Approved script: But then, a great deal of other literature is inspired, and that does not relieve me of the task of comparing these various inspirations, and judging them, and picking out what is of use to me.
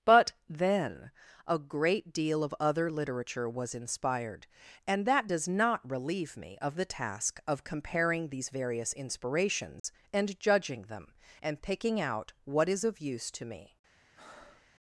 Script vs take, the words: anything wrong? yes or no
yes